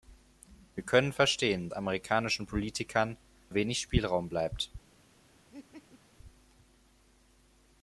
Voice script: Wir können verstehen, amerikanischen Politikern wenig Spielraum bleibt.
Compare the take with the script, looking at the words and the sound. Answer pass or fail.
fail